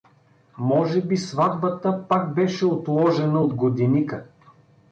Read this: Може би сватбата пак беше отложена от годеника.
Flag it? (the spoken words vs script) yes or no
no